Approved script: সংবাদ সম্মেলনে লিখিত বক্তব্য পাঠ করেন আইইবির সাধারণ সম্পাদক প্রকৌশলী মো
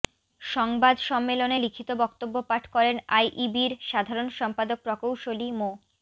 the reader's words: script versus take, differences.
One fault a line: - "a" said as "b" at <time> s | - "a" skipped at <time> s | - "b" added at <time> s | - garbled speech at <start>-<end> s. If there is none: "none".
none